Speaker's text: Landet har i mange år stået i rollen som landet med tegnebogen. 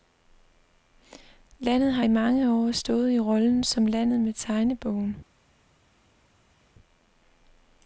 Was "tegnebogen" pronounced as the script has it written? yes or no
yes